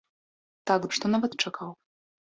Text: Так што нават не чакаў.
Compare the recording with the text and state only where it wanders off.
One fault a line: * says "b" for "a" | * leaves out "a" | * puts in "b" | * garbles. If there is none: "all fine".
all fine